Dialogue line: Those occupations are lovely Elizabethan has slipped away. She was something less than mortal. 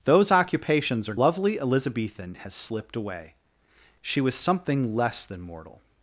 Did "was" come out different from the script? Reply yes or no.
no